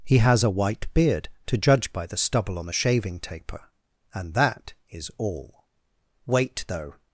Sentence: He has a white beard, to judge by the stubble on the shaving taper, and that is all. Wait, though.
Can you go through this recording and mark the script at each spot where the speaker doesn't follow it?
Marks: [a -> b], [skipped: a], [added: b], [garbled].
He has a white beard, to judge by the stubble on the shaving taper, and that is all. Wait, though.